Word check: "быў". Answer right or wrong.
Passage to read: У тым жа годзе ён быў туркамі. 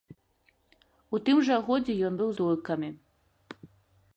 right